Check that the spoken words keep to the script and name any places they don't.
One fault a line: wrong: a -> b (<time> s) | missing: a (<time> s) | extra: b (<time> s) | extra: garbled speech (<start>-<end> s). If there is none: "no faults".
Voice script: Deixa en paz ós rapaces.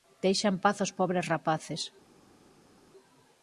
extra: pobres (1.0 s)